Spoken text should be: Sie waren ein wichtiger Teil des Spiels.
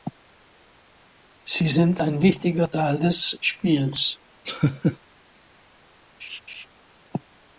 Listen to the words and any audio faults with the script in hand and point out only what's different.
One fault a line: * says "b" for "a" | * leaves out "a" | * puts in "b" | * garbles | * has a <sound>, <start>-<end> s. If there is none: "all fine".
* says "sind" for "waren"
* has a laugh, 4.5-5.0 s
* has a laugh, 6.2-6.7 s